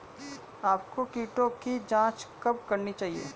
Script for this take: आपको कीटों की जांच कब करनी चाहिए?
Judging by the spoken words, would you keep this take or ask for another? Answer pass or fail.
pass